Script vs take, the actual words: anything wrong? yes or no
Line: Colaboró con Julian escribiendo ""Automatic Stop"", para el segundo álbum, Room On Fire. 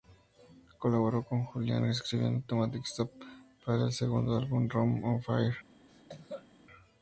no